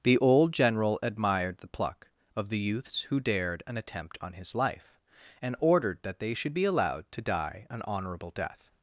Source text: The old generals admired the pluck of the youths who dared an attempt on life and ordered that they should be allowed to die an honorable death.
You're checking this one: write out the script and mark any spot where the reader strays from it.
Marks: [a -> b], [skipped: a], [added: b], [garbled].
The old [generals -> general] admired the pluck of the youths who dared an attempt on [added: his] life and ordered that they should be allowed to die an honorable death.